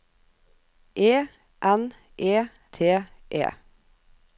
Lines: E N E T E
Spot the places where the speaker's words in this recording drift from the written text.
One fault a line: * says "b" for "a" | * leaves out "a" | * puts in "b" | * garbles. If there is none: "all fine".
all fine